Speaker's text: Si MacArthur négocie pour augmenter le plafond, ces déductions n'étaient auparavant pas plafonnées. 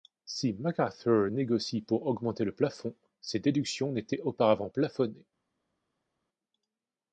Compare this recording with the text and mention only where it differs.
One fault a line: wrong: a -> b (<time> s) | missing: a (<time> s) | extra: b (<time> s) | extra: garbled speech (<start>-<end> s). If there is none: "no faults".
missing: pas (4.7 s)